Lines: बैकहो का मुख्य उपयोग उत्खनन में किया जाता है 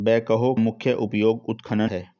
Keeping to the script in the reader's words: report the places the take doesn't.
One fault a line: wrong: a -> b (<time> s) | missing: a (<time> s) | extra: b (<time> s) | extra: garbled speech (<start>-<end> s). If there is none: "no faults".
missing: का (0.5 s)
missing: में किया जाता (1.9 s)